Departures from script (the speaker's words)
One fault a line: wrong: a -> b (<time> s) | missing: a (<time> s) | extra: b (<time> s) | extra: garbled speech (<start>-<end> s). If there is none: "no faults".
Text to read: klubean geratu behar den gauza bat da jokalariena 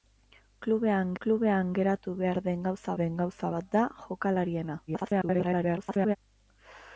extra: klubean (1.2 s)
extra: den gauza (3.0 s)
extra: garbled speech (4.9-6.2 s)